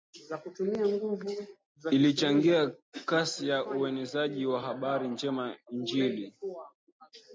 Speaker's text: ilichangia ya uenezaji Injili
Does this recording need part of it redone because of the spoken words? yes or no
yes